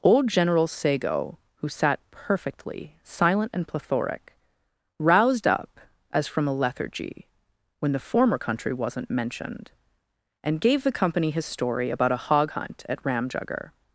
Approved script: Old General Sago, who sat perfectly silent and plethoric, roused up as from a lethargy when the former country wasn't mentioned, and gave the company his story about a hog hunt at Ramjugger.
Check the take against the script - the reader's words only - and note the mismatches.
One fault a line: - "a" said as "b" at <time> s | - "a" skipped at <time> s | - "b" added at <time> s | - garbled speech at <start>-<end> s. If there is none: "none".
none